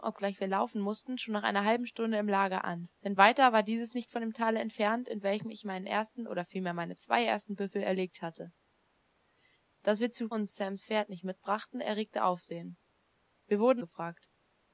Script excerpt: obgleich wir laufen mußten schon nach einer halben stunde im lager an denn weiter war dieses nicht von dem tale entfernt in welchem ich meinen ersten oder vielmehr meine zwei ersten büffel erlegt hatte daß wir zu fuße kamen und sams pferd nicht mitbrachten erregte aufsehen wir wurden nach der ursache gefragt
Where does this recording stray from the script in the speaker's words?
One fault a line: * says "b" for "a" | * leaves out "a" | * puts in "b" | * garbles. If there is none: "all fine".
* leaves out "fuße kamen"
* leaves out "nach der ursache"